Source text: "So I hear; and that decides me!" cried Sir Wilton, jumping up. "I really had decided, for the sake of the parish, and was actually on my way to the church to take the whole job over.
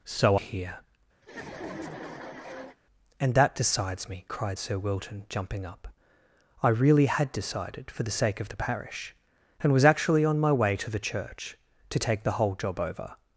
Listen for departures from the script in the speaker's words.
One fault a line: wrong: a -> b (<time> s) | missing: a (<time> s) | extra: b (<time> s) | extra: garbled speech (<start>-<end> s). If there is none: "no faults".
missing: I (0.3 s)